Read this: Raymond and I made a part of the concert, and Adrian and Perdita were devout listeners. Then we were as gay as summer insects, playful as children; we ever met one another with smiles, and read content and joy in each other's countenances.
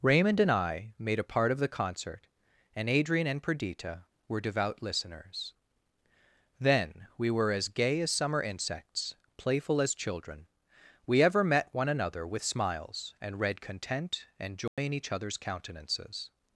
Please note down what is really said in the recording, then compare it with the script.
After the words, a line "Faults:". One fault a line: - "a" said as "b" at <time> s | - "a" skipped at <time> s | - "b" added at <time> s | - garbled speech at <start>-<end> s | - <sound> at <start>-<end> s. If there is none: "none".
Raymond and I made a part of the concert, and Adrian and Perdita were devout listeners. Then we were as gay as summer insects, playful as children; we ever met one another with smiles, and read content and joy in each other's countenances.
Faults:
- dropout at 14.7-14.8 s